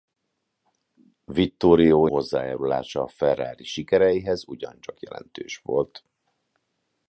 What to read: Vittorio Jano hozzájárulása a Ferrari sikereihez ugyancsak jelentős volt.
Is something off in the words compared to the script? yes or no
yes